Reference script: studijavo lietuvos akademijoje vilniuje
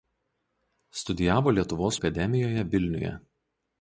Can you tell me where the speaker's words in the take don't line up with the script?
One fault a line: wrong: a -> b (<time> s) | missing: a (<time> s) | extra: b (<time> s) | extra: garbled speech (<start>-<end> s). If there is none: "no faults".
no faults